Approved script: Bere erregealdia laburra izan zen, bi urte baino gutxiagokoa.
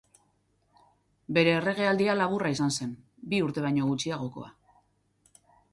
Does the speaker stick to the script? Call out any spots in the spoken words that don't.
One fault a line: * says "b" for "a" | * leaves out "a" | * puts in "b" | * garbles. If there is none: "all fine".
all fine